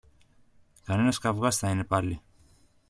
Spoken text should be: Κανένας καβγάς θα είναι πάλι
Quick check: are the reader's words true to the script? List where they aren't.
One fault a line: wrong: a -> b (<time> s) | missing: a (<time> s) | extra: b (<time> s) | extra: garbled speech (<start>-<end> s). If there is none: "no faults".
no faults